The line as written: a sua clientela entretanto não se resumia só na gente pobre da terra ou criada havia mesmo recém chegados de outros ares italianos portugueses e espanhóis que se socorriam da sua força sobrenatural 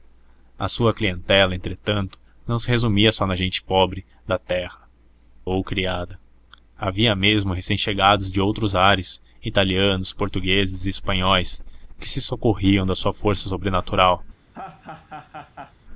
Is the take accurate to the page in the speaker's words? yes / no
yes